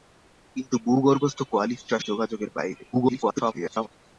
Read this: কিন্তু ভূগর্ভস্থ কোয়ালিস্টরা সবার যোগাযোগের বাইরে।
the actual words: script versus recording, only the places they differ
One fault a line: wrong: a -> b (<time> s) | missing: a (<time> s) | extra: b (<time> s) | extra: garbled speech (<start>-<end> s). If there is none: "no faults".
missing: সবার (2.0 s)
extra: garbled speech (2.9-3.9 s)